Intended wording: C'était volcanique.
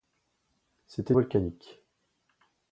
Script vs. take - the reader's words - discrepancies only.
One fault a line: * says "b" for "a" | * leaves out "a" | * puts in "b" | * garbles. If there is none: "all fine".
all fine